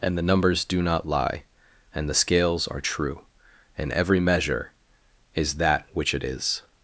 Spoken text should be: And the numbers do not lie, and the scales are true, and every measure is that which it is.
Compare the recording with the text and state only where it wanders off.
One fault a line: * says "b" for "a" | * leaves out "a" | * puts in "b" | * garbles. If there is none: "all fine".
all fine